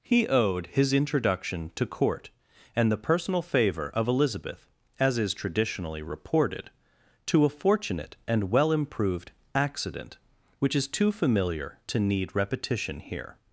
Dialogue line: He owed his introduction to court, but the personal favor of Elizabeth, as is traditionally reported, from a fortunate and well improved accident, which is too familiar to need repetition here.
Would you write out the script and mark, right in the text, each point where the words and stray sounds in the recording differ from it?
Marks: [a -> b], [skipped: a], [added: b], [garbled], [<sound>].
He owed his introduction to court, [but -> and] the personal favor of Elizabeth, as is traditionally reported, [from -> to] a fortunate and well improved accident, which is too familiar to need repetition here.